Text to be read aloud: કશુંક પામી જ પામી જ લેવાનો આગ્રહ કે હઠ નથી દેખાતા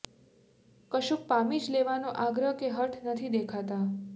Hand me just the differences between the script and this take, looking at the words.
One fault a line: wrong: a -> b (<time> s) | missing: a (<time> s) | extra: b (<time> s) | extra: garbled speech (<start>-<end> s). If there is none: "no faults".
missing: પામી જ (1.7 s)